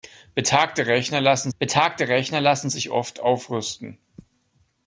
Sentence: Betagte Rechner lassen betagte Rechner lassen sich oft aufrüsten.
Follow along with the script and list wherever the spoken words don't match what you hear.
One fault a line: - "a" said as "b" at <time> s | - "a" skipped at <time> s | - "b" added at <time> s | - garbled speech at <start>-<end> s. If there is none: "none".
none